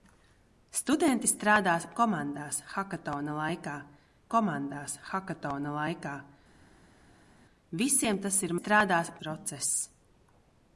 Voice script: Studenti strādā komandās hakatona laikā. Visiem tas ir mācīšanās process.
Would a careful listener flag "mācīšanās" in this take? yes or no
yes